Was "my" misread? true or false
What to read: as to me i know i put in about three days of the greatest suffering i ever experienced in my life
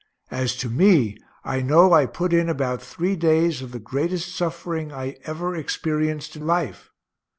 true